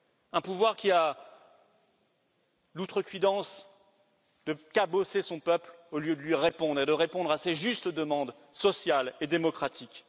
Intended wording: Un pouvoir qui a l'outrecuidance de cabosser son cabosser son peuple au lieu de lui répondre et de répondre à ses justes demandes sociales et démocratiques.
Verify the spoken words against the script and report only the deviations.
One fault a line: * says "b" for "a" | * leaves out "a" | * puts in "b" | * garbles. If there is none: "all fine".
* leaves out "cabosser son"